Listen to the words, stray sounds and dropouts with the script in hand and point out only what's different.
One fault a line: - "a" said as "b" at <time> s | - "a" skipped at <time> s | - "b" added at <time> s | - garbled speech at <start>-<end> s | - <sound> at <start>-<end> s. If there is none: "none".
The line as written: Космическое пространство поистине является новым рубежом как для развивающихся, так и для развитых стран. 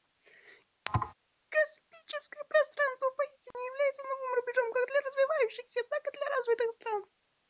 - thud at 0.9-1.1 s
- dropout at 3.5-3.5 s